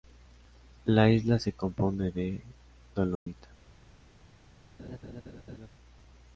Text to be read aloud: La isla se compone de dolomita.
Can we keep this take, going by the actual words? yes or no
yes